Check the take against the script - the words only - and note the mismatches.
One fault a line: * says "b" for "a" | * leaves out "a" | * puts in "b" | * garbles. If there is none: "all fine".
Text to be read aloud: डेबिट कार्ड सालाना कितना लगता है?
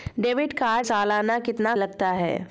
all fine